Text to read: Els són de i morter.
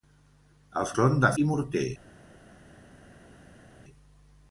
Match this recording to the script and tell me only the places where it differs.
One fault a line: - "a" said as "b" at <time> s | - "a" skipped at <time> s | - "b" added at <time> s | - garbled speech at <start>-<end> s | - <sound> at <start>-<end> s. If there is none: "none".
none